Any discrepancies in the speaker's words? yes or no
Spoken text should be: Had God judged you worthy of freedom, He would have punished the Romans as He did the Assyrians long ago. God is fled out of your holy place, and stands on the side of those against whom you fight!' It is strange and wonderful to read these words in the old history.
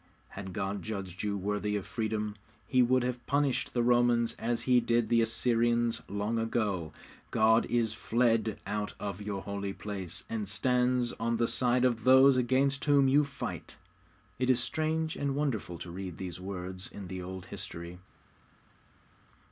no